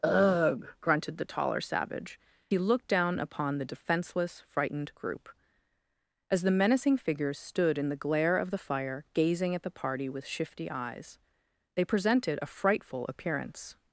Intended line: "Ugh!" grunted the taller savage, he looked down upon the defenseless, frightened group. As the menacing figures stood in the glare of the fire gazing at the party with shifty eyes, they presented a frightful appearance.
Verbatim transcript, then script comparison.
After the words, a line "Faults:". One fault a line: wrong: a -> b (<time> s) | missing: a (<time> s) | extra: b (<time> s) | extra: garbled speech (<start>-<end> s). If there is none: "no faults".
"Ugh!" grunted the taller savage, he looked down upon the defenseless, frightened group. As the menacing figures stood in the glare of the fire gazing at the party with shifty eyes, they presented a frightful appearance.
Faults:
no faults